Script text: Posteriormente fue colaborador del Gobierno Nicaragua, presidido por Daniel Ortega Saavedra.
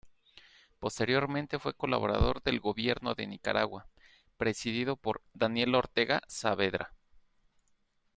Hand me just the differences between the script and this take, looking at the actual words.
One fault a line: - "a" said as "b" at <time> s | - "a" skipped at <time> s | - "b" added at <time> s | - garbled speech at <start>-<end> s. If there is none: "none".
- "de" added at 3.1 s